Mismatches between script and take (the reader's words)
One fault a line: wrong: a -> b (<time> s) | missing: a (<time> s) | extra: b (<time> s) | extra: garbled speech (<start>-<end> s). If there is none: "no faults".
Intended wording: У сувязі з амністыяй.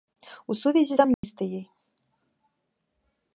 no faults